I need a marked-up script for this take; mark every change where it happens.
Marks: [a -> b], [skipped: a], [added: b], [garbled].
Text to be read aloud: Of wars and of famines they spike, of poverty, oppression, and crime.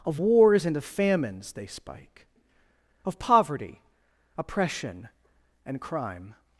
Of wars and of famines they spike, of poverty, oppression, and crime.